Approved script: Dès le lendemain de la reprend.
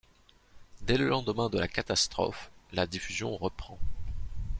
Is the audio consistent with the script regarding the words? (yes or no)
no